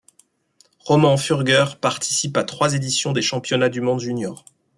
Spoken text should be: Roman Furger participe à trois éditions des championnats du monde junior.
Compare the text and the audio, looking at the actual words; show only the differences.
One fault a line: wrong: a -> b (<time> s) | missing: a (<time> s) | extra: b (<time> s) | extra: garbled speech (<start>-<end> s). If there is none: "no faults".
no faults